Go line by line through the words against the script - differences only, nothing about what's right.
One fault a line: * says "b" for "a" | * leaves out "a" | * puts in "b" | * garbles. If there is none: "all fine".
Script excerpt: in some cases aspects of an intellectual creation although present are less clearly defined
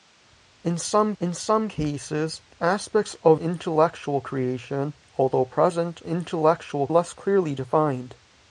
* puts in "in some"
* leaves out "an"
* says "intellectual" for "are"